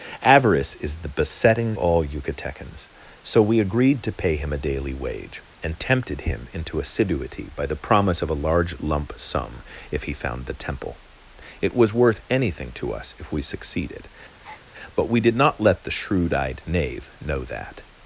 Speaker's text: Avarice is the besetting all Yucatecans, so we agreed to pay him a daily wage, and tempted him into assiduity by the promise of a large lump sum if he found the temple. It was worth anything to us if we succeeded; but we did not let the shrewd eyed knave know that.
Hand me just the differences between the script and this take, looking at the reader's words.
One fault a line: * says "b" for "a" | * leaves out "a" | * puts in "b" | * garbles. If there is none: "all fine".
all fine